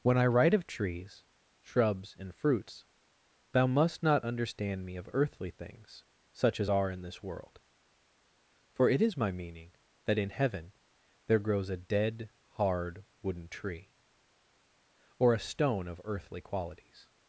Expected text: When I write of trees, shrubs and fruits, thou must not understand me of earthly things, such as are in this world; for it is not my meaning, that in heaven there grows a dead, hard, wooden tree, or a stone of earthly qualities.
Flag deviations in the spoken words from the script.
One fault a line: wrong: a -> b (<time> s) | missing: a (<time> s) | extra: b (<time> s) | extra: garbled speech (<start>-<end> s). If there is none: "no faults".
missing: not (9.2 s)